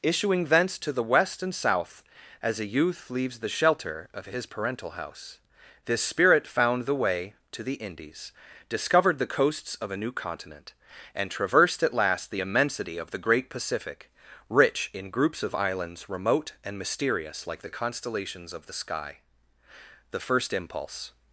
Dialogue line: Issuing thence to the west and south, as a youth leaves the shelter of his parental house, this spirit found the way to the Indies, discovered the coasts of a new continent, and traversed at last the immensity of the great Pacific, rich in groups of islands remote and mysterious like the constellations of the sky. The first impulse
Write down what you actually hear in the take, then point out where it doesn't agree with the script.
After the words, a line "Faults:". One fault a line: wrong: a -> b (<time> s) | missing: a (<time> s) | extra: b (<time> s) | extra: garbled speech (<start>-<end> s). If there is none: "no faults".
Issuing thence to the west and south, as a youth leaves the shelter of his parental house, this spirit found the way to the Indies, discovered the coasts of a new continent, and traversed at last the immensity of the great Pacific, rich in groups of islands remote and mysterious like the constellations of the sky. The first impulse
Faults:
no faults